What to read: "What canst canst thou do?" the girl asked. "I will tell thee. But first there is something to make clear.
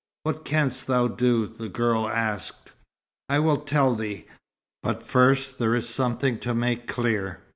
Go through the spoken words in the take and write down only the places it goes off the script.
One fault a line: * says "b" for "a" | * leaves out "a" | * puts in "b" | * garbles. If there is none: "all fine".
* leaves out "canst"